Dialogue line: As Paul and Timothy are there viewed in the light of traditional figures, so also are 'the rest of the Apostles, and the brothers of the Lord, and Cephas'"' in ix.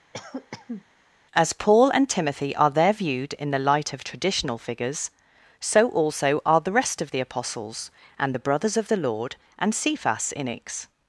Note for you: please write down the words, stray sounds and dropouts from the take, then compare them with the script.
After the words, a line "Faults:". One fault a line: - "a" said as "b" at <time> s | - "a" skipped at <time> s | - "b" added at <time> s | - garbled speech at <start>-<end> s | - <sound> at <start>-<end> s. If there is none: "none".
As Paul and Timothy are there viewed in the light of traditional figures, so also are 'the rest of the Apostles, and the brothers of the Lord, and Cephas'"' in ix.
Faults:
- cough at 0.1-0.8 s